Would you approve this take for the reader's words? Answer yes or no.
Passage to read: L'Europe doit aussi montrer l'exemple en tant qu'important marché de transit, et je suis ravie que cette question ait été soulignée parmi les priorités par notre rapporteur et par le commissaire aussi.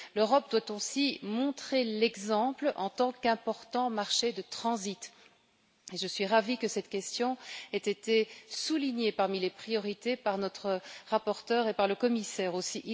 yes